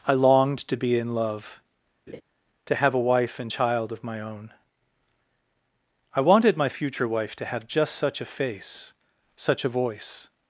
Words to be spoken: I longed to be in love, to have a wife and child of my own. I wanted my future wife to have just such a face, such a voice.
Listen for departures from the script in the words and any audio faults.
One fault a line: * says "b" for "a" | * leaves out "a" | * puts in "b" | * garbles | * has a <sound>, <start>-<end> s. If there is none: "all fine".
* has a laugh, 2.1-2.2 s